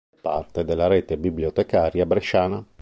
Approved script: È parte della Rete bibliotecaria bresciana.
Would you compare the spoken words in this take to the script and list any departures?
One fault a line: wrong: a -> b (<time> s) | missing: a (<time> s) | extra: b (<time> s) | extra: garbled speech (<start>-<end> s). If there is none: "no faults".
no faults